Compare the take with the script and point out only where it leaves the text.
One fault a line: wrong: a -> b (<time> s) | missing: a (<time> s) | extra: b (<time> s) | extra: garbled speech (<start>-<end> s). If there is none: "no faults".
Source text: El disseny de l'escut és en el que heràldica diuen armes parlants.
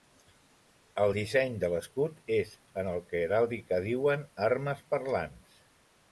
no faults